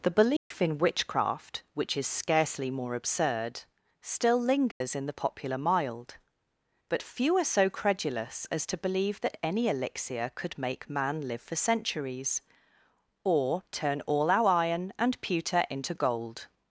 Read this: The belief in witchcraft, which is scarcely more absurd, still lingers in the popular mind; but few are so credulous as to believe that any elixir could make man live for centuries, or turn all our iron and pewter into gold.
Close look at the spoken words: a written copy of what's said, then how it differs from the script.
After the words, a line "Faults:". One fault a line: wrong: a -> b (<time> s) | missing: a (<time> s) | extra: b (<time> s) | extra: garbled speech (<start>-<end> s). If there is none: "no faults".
The belief in witchcraft, which is scarcely more absurd, still lingers in the popular mild; but few are so credulous as to believe that any elixir could make man live for centuries, or turn all our iron and pewter into gold.
Faults:
wrong: mind -> mild (5.6 s)